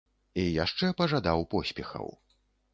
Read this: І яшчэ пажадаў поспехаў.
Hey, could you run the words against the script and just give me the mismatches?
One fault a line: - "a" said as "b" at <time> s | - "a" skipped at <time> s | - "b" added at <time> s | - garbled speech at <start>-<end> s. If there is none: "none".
none